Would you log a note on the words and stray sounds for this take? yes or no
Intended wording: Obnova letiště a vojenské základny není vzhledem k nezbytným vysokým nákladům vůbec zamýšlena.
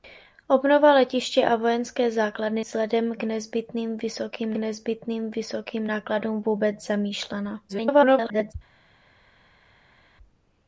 yes